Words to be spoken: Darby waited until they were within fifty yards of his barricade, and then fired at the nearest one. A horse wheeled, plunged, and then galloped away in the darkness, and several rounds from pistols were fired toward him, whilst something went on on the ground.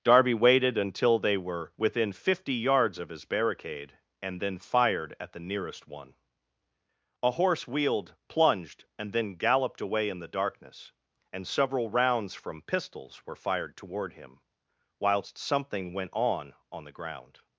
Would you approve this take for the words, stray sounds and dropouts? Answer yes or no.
yes